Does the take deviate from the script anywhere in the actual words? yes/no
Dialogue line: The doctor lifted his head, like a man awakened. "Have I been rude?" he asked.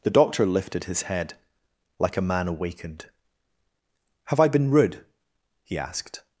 no